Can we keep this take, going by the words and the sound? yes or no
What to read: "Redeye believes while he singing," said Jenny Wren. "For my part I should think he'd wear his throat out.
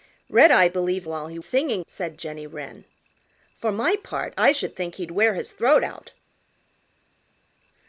yes